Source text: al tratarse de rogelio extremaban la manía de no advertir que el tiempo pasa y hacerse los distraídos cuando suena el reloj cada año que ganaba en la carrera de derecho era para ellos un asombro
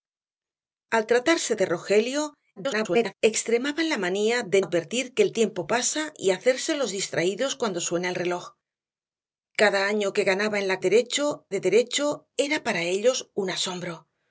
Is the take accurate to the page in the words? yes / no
no